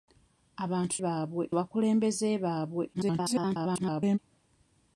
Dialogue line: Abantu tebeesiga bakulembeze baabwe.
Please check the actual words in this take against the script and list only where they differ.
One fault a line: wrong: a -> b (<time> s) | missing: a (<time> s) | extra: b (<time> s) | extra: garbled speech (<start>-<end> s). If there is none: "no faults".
wrong: tebeesiga -> baabwe (1.0 s)
extra: garbled speech (2.9-4.2 s)